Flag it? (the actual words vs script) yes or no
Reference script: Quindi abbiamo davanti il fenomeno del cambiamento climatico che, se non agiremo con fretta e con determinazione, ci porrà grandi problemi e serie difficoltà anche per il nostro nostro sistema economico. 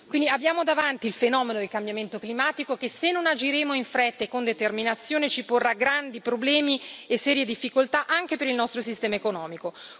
yes